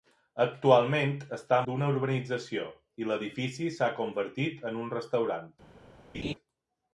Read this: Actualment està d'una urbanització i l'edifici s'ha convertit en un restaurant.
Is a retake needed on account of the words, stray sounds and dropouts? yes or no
yes